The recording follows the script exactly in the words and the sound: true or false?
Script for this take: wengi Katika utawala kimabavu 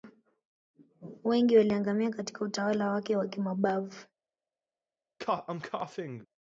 false